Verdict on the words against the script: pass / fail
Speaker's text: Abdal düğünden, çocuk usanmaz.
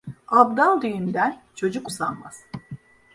pass